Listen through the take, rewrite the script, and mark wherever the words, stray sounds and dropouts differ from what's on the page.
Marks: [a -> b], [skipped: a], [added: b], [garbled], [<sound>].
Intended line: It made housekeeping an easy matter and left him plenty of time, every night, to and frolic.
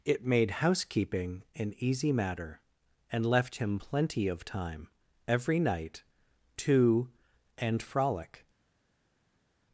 It made housekeeping an easy matter and left him plenty of time, every night, to and frolic.